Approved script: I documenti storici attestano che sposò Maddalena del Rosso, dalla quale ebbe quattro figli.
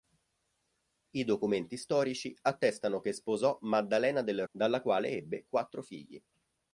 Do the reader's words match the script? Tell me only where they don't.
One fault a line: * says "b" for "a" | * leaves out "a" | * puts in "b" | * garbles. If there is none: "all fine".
* leaves out "Rosso"